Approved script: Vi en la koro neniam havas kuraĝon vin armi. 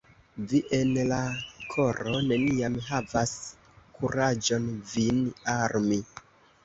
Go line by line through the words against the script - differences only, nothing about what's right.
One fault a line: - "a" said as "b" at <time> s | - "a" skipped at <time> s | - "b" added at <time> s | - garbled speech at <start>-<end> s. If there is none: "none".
none